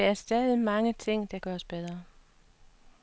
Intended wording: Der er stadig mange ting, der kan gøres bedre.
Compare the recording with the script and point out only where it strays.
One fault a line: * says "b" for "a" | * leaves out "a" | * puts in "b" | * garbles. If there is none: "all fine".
* leaves out "kan"